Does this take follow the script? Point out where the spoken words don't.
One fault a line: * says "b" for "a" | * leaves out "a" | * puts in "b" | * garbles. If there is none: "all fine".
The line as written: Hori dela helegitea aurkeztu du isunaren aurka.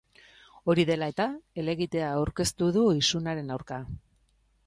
* puts in "eta"